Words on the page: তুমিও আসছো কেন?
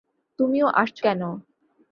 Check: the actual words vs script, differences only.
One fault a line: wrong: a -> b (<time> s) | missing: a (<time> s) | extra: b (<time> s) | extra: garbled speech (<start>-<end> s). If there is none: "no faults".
no faults